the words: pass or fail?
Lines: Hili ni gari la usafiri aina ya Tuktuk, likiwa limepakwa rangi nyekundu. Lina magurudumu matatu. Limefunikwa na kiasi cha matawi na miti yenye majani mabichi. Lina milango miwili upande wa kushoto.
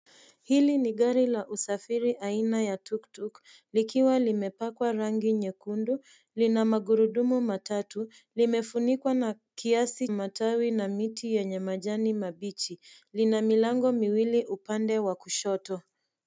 fail